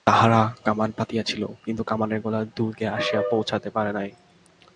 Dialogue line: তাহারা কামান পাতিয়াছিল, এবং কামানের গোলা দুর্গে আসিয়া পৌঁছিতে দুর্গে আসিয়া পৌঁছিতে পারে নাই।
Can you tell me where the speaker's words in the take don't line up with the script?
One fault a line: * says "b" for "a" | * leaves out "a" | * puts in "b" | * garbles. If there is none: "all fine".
* says "কিন্তু" for "এবং"
* leaves out "দুর্গে আসিয়া পৌঁছিতে"